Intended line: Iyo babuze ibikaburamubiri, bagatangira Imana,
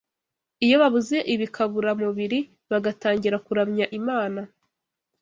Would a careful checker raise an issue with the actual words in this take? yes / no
yes